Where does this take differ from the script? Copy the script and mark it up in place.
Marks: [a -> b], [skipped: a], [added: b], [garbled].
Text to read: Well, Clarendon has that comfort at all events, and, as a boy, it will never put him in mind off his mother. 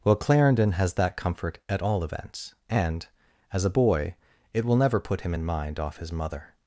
Well, Clarendon has that comfort at all events, and, as a boy, it will never put him in mind off his mother.